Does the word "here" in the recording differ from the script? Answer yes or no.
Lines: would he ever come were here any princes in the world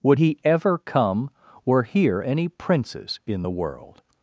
no